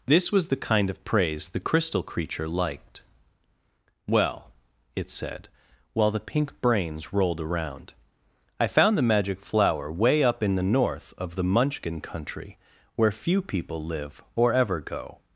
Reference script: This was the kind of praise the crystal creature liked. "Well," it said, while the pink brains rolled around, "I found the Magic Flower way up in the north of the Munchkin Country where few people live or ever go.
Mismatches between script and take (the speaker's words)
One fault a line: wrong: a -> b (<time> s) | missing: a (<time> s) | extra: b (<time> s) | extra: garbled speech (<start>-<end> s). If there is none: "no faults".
no faults